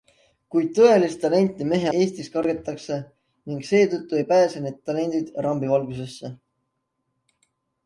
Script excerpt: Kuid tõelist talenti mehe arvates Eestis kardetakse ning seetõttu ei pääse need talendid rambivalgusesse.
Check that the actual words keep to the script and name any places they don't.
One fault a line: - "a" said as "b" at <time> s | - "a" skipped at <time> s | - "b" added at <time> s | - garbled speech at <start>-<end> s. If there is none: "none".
- "arvates" skipped at 1.9 s